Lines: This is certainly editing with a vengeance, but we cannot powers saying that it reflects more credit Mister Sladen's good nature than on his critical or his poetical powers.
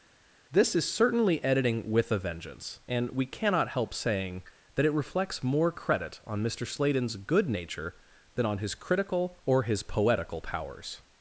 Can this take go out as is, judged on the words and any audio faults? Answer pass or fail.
fail